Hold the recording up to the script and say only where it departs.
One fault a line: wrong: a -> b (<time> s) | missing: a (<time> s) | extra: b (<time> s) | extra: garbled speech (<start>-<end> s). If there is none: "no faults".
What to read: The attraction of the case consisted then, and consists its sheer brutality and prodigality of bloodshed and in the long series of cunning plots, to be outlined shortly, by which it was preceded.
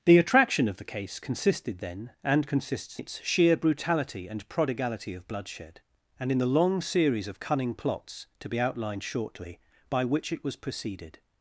no faults